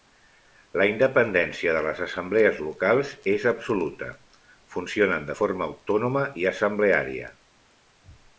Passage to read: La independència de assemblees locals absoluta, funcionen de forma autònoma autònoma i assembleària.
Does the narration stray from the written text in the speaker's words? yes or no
yes